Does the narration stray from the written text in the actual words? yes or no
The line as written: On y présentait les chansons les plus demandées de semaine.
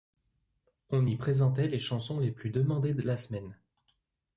yes